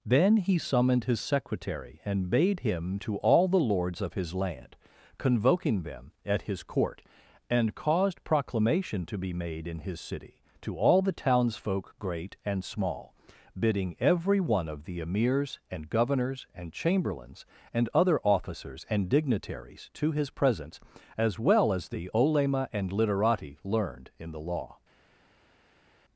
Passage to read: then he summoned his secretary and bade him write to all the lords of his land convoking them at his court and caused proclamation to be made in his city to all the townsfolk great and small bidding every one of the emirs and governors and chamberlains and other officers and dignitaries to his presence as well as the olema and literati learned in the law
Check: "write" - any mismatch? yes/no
yes